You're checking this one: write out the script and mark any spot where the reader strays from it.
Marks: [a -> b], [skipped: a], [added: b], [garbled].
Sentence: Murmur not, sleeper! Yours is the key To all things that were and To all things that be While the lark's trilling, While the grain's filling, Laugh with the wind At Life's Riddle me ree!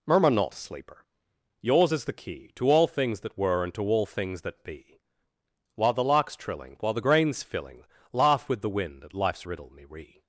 Murmur not, sleeper! Yours is the key To all things that were and To all things that be While the lark's trilling, While the grain's filling, Laugh with the wind At Life's Riddle me ree!